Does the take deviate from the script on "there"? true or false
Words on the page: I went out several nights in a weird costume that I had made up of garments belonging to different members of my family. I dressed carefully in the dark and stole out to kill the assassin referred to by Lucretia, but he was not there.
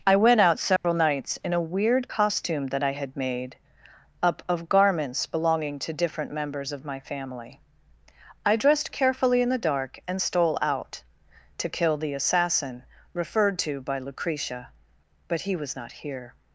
true